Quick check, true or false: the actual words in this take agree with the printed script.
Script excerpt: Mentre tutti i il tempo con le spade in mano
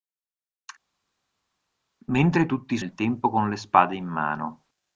true